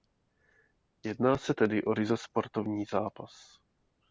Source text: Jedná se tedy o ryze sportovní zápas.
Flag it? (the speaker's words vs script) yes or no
no